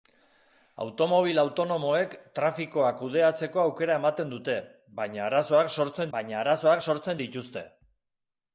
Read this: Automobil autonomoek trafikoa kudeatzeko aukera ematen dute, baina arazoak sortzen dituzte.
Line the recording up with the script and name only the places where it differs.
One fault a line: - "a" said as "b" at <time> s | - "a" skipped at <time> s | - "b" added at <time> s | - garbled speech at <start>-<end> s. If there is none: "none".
- "baina arazoak sortzen" added at 6.2 s